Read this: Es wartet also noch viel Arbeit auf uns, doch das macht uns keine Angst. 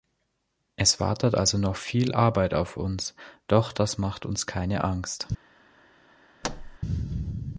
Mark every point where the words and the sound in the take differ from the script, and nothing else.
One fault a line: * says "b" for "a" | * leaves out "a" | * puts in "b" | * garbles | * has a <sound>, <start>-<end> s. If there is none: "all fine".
* has a thud, 6.4-6.8 s